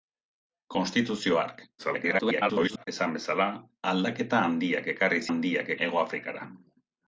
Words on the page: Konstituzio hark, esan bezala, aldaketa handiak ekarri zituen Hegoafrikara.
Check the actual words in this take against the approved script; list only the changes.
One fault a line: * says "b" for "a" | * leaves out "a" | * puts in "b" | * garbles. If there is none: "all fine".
* garbles
* says "handiak" for "zituen"